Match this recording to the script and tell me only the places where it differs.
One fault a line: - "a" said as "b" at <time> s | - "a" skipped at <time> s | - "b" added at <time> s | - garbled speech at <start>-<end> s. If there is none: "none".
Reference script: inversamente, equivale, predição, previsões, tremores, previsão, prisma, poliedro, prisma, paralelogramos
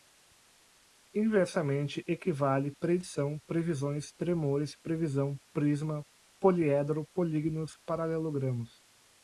- "prisma" said as "políginos" at 7.1 s